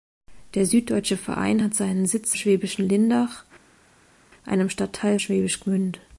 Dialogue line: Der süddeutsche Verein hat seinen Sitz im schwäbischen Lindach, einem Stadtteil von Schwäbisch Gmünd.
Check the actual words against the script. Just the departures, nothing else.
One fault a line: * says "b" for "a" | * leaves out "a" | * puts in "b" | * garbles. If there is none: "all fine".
* leaves out "im"
* leaves out "von"